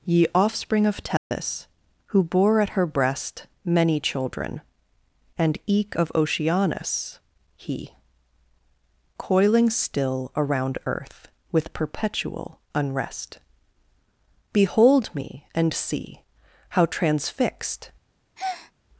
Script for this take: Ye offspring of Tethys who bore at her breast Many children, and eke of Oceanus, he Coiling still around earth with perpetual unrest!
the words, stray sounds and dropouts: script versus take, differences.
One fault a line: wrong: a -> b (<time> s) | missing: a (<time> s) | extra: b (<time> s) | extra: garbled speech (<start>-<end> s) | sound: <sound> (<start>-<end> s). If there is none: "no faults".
sound: dropout (1.2-1.3 s)
extra: Behold me and see How transfixed (14.5 s)
sound: breath (18.4-18.7 s)